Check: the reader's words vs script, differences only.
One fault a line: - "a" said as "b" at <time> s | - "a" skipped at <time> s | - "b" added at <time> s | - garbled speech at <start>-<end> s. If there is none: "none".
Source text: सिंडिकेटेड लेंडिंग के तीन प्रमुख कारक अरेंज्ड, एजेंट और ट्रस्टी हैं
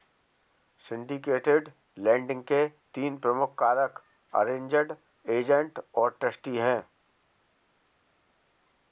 none